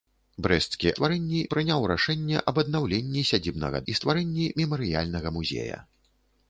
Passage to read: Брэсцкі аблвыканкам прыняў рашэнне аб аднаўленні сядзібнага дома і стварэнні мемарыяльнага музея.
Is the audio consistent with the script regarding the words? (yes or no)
no